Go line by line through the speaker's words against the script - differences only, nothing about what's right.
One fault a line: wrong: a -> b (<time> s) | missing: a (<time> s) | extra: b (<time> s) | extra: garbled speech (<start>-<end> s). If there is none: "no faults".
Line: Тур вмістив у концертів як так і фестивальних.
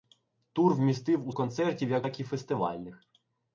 no faults